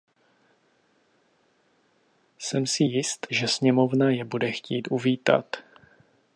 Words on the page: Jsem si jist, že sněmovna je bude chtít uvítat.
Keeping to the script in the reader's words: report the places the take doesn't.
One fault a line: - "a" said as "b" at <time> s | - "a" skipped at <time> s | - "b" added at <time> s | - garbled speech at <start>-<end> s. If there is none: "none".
none